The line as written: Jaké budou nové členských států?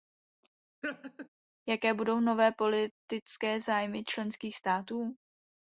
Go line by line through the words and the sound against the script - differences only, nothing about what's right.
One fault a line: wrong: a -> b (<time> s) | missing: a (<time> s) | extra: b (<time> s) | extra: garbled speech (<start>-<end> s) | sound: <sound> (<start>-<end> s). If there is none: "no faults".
sound: laugh (0.8-1.3 s)
extra: politické zájmy (2.5 s)